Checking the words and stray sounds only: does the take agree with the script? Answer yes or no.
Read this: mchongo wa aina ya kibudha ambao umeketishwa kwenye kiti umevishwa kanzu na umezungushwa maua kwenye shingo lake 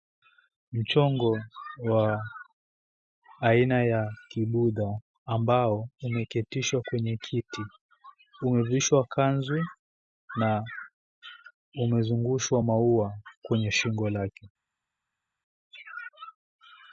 yes